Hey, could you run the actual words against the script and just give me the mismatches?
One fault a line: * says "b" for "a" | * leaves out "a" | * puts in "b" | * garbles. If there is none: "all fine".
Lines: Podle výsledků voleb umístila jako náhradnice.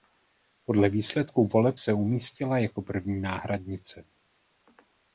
* puts in "se"
* puts in "první"